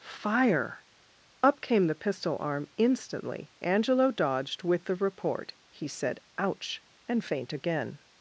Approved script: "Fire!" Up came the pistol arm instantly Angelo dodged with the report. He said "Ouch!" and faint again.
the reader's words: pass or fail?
pass